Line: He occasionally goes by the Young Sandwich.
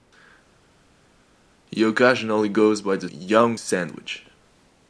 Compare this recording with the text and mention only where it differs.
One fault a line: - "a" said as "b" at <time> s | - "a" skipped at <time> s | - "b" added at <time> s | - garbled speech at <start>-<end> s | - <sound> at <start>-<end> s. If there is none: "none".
none